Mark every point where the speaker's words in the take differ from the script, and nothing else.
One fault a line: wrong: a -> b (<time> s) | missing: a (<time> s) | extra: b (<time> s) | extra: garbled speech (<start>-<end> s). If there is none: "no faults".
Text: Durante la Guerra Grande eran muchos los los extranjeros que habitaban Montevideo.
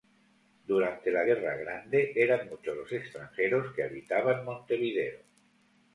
missing: los (2.9 s)